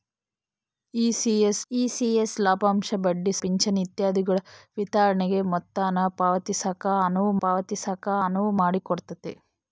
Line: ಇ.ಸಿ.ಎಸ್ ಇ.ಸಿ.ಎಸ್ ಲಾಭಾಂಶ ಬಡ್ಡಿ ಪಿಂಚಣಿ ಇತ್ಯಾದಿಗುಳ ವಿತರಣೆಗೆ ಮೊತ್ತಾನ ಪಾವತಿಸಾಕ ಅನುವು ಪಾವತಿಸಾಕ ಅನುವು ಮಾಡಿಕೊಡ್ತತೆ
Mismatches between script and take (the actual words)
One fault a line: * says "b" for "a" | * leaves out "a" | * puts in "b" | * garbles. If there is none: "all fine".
all fine